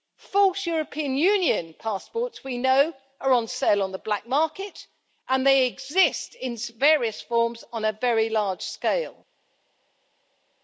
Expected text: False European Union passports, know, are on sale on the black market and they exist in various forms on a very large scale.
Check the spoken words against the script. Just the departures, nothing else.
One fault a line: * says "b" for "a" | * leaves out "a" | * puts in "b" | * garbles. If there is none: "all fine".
* puts in "we"